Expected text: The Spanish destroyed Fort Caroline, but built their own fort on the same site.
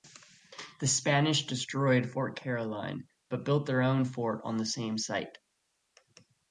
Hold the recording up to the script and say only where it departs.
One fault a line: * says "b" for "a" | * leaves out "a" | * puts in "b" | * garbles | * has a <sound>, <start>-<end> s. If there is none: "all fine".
all fine